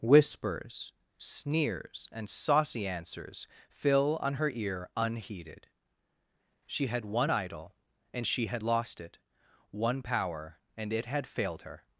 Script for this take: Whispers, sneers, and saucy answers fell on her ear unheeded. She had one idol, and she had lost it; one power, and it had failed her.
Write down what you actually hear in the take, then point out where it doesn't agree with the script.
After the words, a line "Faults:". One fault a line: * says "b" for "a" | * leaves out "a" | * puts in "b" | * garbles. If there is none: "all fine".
Whispers, sneers, and saucy answers fill on her ear unheeded. She had one idol, and she had lost it; one power, and it had failed her.
Faults:
* says "fill" for "fell"